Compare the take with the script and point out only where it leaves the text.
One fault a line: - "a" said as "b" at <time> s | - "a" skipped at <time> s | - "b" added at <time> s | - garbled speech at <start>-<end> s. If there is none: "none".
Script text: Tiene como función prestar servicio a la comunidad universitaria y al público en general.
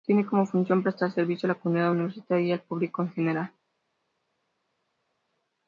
none